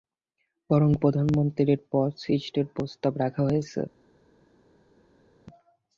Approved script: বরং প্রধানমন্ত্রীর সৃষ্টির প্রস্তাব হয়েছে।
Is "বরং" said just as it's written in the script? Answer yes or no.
yes